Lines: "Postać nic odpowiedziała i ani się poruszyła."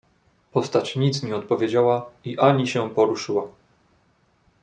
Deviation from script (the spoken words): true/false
true